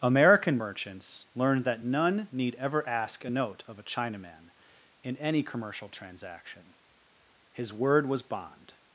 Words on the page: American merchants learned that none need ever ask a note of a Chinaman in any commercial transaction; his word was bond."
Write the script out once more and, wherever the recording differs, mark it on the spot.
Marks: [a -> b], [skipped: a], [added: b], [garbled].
American merchants learned that none need ever ask a note of a Chinaman in any commercial transaction; his word was bond."